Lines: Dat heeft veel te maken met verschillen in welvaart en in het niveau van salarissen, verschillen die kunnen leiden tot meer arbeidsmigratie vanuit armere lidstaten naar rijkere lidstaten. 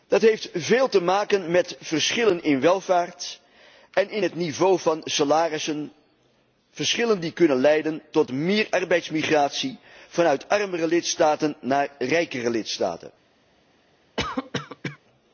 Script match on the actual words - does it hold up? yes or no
yes